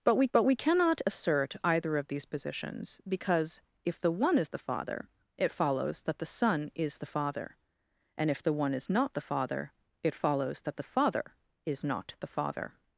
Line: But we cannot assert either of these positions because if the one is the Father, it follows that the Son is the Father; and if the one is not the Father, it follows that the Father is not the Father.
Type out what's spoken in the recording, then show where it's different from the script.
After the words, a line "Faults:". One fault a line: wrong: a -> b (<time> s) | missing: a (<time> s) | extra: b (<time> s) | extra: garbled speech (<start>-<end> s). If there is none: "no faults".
But we but we cannot assert either of these positions because if the one is the Father, it follows that the Son is the Father; and if the one is not the Father, it follows that the Father is not the Father.
Faults:
extra: but we (0.3 s)